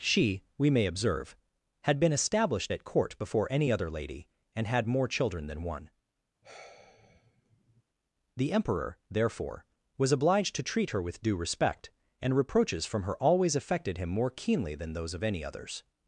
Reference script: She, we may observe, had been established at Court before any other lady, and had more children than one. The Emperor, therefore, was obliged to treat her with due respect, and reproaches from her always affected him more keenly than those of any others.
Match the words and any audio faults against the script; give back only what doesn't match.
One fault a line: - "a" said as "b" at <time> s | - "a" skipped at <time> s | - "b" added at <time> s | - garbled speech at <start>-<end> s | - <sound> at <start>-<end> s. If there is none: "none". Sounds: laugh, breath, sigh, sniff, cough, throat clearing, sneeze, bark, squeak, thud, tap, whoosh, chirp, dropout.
- sigh at 6.4-7.8 s